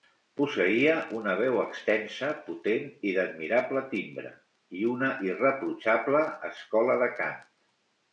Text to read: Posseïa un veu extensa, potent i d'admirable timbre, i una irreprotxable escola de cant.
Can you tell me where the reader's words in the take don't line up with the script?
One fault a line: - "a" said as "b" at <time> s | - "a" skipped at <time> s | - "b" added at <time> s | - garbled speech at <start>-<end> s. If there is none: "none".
- "un" said as "una" at 1.2 s